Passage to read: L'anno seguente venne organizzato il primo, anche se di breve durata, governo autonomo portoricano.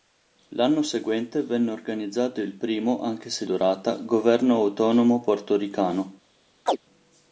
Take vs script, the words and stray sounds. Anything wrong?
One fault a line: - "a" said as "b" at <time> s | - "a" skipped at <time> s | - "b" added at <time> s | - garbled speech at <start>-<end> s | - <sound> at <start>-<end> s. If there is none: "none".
- "di breve" skipped at 3.5 s
- chirp at 6.7-6.8 s